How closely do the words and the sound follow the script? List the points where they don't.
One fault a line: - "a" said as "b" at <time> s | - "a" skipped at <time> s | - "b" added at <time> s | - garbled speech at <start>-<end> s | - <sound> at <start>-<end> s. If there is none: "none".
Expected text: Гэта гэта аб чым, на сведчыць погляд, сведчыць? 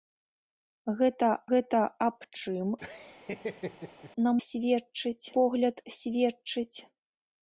- laugh at 2.8-4.1 s